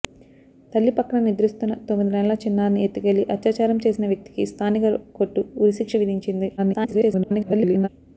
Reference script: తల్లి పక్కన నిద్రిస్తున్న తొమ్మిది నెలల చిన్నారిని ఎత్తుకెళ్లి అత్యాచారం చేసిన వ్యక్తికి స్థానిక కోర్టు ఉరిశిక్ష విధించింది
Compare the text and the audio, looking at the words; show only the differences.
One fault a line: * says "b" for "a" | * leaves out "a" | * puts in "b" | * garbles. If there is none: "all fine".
* garbles